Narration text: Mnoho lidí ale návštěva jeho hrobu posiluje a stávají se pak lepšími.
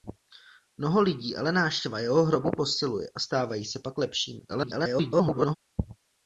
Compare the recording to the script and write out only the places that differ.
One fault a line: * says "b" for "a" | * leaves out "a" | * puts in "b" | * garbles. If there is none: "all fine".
* garbles